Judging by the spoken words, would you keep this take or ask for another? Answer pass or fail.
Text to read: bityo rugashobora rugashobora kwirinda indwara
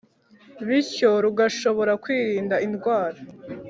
fail